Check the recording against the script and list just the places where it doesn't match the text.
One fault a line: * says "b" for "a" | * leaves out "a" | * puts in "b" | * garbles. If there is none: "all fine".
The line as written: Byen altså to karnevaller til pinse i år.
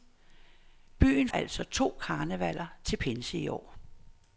all fine